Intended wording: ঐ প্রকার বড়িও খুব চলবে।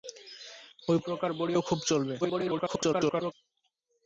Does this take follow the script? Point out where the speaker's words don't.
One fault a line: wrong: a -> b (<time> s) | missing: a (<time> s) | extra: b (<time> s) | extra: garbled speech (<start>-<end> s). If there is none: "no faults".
extra: garbled speech (2.2-3.3 s)